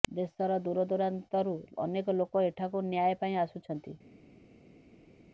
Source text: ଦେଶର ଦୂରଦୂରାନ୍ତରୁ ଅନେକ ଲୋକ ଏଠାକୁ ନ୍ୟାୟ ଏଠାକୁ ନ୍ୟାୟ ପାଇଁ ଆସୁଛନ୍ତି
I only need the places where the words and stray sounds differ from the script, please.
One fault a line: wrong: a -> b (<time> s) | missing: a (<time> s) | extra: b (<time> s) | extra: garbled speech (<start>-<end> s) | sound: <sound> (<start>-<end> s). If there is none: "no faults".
missing: ଏଠାକୁ ନ୍ୟାୟ (3.2 s)